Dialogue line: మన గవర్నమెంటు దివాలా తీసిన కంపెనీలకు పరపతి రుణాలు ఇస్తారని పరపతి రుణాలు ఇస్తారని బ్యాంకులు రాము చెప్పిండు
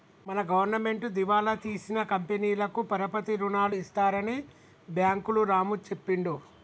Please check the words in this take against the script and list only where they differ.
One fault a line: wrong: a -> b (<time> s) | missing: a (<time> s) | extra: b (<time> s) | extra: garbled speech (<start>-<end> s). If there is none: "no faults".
missing: పరపతి రుణాలు ఇస్తారని (4.4 s)